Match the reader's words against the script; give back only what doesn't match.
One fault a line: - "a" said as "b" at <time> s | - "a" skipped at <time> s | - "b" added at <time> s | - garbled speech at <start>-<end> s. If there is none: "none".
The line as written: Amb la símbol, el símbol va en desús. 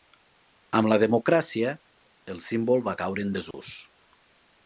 - "símbol" said as "democràcia" at 1.0 s
- "caure" added at 3.0 s